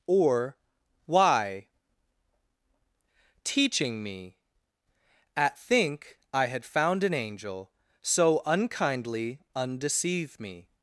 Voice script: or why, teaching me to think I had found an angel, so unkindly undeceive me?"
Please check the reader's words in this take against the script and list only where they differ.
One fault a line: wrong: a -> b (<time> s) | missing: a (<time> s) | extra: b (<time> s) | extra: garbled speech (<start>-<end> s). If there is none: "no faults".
wrong: to -> at (5.3 s)